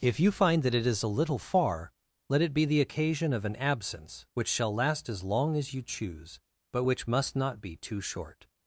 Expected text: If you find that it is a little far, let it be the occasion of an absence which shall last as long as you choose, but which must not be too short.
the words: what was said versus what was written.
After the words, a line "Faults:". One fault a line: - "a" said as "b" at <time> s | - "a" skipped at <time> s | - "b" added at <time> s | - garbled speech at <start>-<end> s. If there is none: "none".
If you find that it is a little far, let it be the occasion of an absence which shall last as long as you choose, but which must not be too short.
Faults:
none